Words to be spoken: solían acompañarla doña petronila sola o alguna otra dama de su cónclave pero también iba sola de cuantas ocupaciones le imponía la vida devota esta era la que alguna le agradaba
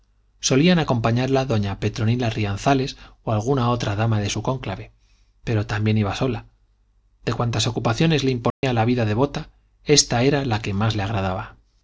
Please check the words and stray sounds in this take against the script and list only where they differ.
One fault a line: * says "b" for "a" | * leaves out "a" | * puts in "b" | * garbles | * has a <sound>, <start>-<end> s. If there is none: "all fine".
* says "rianzares" for "sola"
* has a dropout, 8.5-8.6 s
* says "más" for "alguna"